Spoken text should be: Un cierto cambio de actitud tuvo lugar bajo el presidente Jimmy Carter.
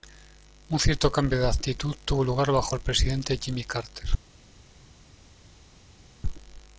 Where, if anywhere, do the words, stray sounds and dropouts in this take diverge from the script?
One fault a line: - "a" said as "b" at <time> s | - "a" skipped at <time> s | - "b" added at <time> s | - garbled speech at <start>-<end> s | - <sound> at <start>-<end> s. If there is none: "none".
none